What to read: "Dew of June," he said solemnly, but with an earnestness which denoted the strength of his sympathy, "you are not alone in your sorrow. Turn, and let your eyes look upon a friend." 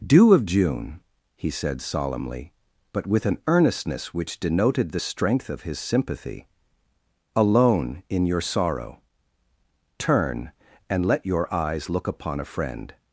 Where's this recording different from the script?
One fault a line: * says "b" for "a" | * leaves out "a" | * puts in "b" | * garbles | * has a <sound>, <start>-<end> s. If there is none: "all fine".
* leaves out "you are not"